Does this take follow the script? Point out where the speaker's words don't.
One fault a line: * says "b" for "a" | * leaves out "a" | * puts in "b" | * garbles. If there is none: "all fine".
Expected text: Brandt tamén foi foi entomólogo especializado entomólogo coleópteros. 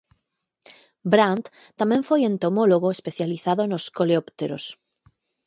* leaves out "foi"
* says "nos" for "entomólogo"